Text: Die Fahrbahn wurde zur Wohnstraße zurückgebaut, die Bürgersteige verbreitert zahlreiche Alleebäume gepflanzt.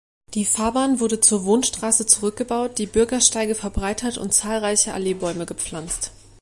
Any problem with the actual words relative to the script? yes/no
yes